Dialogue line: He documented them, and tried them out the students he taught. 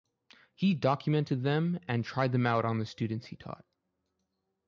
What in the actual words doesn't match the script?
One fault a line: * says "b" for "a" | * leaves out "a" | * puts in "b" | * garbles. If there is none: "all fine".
* puts in "on"